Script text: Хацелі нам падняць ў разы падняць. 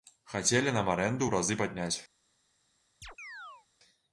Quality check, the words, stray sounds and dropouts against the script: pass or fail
fail